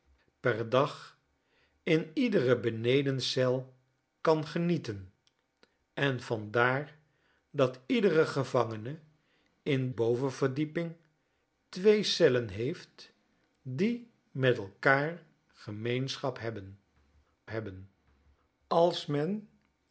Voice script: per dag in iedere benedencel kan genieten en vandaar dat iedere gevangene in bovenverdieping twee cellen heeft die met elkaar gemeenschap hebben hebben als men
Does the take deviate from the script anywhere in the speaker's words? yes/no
no